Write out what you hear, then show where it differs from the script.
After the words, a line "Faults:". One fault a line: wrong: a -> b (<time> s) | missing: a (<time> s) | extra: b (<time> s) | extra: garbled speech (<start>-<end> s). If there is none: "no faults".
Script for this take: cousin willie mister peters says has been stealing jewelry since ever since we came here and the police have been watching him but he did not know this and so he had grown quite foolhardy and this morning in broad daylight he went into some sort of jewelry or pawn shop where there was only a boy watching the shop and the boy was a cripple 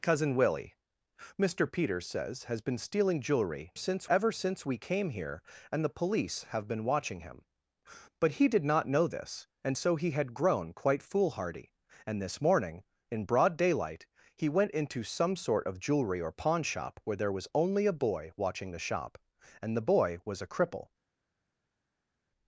cousin willie mister peters says has been stealing jewelry since ever since we came here and the police have been watching him but he did not know this and so he had grown quite foolhardy and this morning in broad daylight he went into some sort of jewelry or pawn shop where there was only a boy watching the shop and the boy was a cripple
Faults:
no faults